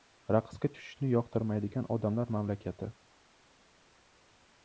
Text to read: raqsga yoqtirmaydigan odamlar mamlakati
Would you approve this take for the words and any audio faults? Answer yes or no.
no